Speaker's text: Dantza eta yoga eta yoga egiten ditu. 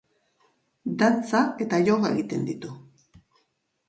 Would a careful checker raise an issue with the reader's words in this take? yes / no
yes